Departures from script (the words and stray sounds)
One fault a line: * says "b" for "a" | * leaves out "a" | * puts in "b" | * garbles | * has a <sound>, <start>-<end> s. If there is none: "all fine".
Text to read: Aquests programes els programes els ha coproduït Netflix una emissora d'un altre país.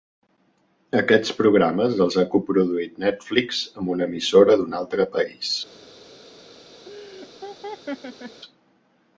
* leaves out "programes els"
* puts in "amb"
* has a laugh, 6.9-8.4 s